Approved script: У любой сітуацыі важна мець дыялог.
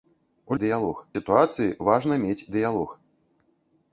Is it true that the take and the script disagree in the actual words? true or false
true